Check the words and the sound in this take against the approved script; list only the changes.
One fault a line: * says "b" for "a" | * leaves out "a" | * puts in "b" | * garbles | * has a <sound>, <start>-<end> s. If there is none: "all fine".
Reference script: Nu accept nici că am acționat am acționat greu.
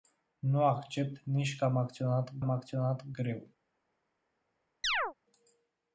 * has a chirp, 4.8-5.1 s